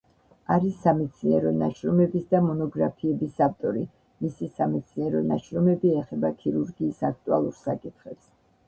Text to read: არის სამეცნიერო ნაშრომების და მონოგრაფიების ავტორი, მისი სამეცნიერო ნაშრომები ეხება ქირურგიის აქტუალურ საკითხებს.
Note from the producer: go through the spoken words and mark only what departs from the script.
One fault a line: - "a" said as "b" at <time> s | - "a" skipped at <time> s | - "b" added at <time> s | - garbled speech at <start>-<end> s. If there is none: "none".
none